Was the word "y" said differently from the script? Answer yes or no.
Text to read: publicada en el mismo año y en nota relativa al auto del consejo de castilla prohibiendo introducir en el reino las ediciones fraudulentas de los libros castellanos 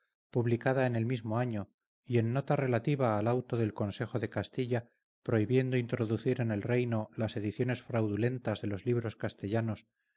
no